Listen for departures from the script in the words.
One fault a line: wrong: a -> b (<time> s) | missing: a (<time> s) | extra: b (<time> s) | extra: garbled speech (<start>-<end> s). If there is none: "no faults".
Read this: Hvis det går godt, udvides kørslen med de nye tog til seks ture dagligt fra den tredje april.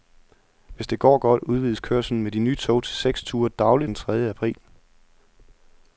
missing: fra (3.9 s)